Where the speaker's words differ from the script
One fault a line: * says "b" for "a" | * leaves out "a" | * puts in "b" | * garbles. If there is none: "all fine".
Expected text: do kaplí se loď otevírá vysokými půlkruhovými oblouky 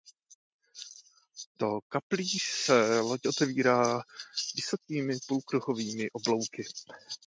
all fine